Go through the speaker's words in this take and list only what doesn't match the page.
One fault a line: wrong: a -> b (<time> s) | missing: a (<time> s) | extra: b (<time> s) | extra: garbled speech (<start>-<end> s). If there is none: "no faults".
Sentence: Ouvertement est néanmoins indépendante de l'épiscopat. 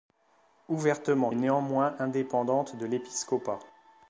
no faults